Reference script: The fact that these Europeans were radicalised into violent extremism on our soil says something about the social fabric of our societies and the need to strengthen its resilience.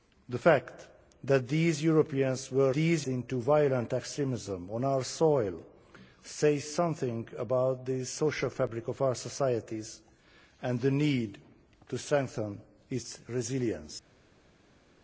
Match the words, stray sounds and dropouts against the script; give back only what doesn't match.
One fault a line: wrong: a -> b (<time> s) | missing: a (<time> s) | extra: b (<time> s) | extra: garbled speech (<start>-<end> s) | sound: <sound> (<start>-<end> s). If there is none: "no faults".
wrong: radicalised -> these (2.7 s)